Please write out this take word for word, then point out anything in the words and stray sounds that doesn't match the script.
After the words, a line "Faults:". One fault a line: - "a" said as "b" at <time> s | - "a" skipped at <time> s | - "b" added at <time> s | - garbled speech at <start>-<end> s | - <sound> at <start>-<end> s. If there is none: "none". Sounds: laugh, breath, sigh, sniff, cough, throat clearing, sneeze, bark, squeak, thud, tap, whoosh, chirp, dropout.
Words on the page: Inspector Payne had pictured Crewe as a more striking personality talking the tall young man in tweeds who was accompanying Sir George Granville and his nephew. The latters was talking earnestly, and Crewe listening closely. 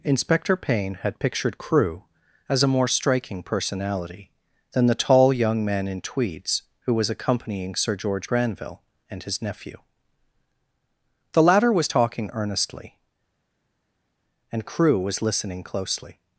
Inspector Payne had pictured Crewe as a more striking personality than the tall young man in tweeds who was accompanying Sir George Granville and his nephew. The latter was talking earnestly, and Crewe was listening closely.
Faults:
- "talking" said as "than" at 4.7 s
- "latters" said as "latter" at 11.4 s
- "was" added at 15.0 s